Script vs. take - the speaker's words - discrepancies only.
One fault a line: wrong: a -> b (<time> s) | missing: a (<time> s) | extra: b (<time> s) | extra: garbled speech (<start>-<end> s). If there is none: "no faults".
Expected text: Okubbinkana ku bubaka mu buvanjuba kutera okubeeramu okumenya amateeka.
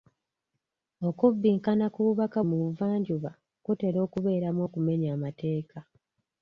no faults